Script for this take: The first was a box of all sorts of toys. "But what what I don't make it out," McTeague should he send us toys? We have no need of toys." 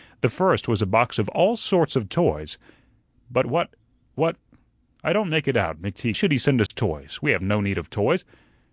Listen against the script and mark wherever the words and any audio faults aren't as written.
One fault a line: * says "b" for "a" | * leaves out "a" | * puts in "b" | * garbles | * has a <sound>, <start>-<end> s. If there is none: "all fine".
* has a dropout, 6.7-6.7 s